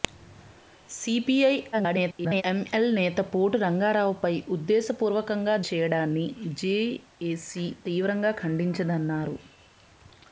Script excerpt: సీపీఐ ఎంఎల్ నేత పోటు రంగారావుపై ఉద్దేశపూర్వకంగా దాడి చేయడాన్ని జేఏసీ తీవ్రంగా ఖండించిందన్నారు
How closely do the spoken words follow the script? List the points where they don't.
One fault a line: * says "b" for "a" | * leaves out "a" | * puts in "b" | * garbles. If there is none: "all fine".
* garbles
* leaves out "దాడి"